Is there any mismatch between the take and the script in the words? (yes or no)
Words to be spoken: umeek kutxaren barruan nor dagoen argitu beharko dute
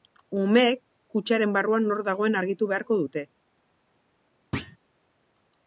no